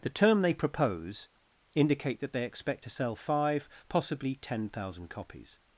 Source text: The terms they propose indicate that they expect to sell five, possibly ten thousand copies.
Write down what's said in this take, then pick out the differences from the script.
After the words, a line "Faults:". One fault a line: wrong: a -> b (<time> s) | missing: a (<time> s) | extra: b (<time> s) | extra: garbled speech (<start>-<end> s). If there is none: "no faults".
The term they propose indicate that they expect to sell five, possibly ten thousand copies.
Faults:
wrong: terms -> term (0.1 s)